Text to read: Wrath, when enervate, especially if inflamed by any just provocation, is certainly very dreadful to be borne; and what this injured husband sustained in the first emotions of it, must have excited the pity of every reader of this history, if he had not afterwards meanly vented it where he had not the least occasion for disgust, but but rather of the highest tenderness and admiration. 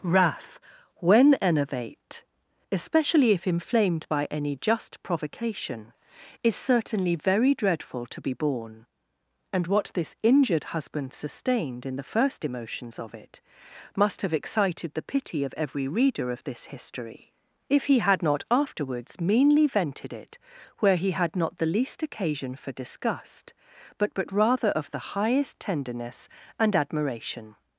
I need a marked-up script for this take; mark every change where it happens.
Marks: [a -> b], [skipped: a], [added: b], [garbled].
Wrath, when enervate, especially if inflamed by any just provocation, is certainly very dreadful to be borne; and what this injured husband sustained in the first emotions of it, must have excited the pity of every reader of this history, if he had not afterwards meanly vented it where he had not the least occasion for disgust, but but rather of the highest tenderness and admiration.